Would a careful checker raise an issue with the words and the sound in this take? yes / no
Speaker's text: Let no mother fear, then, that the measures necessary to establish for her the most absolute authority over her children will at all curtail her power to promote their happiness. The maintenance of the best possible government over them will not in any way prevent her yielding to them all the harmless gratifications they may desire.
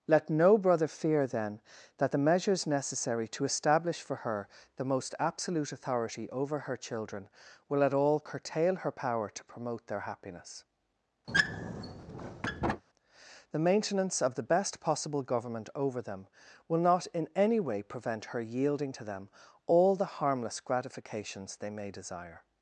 yes